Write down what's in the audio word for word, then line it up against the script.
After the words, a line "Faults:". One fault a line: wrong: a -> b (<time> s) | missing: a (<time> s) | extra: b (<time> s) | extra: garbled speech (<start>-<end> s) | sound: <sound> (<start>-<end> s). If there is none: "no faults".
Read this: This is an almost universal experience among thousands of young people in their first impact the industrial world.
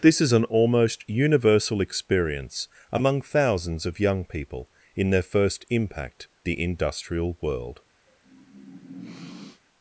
This is an almost universal experience among thousands of young people in their first impact the industrial world.
Faults:
sound: sniff (8.1-9.6 s)